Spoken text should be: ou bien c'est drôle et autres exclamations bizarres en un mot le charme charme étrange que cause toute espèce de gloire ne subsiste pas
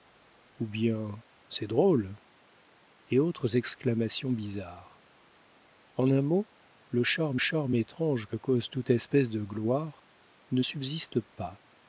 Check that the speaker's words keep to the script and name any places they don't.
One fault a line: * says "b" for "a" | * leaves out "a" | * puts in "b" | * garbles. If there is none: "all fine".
all fine